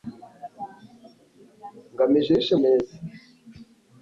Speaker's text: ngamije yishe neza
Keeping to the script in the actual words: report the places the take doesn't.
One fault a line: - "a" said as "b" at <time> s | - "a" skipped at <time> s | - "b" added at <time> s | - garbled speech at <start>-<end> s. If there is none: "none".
none